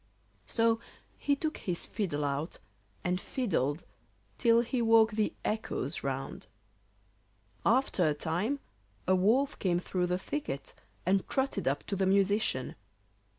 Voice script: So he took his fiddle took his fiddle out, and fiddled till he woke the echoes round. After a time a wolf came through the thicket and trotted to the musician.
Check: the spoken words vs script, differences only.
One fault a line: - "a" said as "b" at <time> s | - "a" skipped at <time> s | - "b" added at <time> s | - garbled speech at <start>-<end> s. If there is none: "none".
- "took his fiddle" skipped at 2.2 s
- "up" added at 11.7 s